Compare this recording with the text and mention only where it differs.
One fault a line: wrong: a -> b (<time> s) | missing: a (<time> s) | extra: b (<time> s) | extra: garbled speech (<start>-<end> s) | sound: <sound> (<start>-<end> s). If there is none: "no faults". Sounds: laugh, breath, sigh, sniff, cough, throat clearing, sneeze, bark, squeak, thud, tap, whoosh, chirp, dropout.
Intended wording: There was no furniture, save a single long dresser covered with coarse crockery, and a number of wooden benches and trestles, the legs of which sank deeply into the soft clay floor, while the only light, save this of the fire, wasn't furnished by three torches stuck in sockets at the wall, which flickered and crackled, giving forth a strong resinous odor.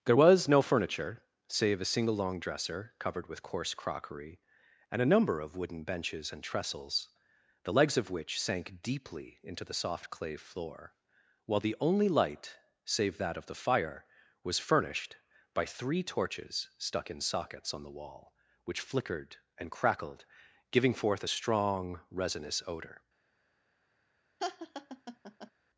wrong: this -> that (13.2 s)
wrong: wasn't -> was (14.4 s)
wrong: at -> on (17.7 s)
sound: laugh (24.4-25.5 s)